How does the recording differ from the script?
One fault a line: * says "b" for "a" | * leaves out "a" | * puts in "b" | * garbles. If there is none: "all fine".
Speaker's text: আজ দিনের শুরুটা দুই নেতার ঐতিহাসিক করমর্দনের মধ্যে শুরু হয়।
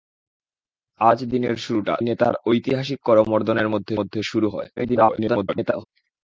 * leaves out "দুই"
* puts in "মধ্যে"
* garbles